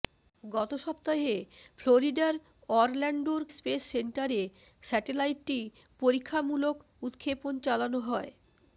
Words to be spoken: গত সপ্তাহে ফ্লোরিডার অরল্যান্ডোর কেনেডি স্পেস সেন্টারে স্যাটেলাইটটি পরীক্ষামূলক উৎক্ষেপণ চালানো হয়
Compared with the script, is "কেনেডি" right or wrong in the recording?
wrong